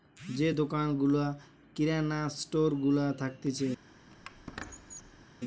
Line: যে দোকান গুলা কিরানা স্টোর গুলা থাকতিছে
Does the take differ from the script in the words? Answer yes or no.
no